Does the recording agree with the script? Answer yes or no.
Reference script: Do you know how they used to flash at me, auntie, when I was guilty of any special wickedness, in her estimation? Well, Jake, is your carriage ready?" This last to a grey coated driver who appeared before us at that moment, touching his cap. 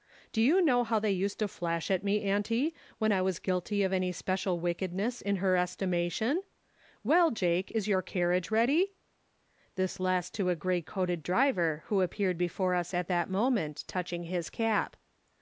yes